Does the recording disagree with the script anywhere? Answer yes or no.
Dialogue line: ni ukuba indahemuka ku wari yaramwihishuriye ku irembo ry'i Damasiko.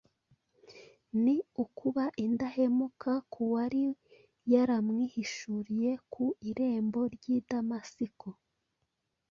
no